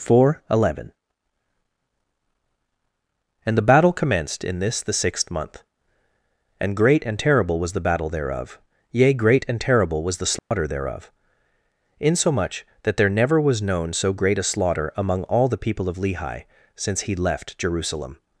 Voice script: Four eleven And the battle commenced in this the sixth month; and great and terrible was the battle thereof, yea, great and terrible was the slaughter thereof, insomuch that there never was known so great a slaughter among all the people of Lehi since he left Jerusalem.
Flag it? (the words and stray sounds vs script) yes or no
yes